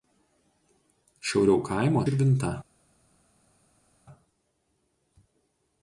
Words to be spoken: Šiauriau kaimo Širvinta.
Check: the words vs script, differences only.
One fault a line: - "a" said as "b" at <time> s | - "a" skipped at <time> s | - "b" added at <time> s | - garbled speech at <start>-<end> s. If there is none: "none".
none